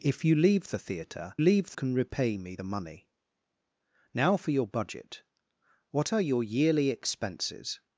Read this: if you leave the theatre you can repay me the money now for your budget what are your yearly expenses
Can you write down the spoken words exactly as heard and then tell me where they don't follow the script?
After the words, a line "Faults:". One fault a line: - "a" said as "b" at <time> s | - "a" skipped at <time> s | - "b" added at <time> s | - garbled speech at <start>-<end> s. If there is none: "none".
if you leave the theatre leave can repay me the money now for your budget what are your yearly expenses
Faults:
- "you" said as "leave" at 1.4 s